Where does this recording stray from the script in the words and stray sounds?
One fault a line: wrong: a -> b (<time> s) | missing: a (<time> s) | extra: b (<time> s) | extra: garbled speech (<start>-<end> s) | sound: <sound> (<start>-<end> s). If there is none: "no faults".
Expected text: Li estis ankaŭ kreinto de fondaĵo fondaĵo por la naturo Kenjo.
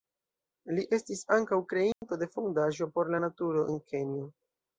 sound: dropout (1.9-2.0 s)
missing: fondaĵo (2.9 s)
extra: en (3.7 s)